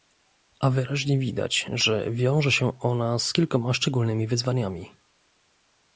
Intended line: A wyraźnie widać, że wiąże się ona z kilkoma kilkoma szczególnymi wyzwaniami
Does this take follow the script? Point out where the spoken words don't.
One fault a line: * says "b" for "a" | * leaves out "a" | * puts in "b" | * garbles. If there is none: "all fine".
* leaves out "kilkoma"